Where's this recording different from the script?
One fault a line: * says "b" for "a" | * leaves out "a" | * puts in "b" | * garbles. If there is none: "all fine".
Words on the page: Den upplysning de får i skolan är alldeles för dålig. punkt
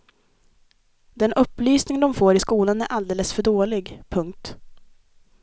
all fine